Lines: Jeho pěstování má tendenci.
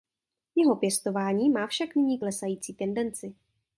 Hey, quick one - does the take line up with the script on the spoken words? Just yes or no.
no